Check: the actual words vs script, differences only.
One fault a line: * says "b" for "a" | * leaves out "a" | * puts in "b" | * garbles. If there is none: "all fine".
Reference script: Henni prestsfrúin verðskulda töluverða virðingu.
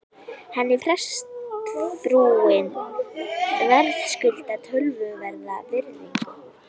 all fine